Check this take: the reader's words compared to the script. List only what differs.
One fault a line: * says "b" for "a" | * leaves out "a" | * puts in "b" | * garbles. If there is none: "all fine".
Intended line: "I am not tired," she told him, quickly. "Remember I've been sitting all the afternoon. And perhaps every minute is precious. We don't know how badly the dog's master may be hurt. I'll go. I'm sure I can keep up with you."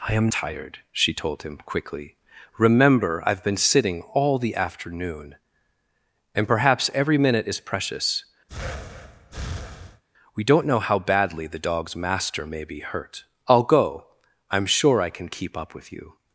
* leaves out "not"